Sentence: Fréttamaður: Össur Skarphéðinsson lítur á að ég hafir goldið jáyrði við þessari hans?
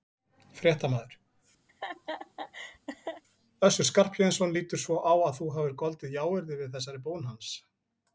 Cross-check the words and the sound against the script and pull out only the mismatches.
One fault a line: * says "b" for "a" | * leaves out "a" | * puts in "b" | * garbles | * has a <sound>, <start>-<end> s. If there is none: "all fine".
* has a laugh, 1.7-3.2 s
* puts in "svo"
* says "þú" for "ég"
* puts in "bón"